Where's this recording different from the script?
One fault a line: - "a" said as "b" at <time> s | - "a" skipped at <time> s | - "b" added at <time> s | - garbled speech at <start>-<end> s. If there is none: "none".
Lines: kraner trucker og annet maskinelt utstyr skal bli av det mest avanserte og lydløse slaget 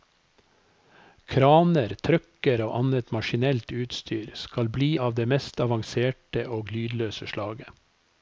none